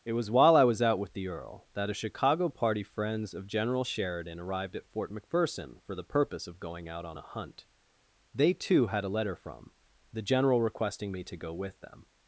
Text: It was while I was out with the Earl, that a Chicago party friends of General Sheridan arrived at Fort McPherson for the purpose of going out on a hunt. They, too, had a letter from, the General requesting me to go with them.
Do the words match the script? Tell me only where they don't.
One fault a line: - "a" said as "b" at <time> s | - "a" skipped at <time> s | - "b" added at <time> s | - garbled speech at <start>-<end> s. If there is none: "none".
none